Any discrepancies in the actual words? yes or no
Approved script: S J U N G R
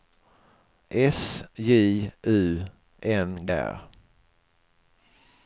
no